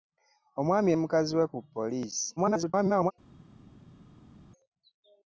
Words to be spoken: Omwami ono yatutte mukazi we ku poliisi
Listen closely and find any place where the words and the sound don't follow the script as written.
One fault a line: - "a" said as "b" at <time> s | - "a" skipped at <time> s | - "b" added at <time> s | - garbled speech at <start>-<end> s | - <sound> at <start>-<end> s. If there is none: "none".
- "ono yatutte" skipped at 0.9 s
- garbled speech at 2.4-3.1 s